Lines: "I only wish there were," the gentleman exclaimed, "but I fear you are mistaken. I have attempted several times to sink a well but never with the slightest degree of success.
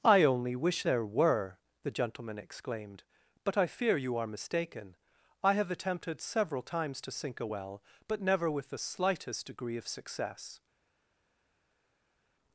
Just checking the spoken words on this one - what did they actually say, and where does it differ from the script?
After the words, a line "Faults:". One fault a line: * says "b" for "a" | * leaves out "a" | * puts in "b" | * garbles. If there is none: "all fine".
"I only wish there were," the gentleman exclaimed, "but I fear you are mistaken. I have attempted several times to sink a well but never with the slightest degree of success.
Faults:
all fine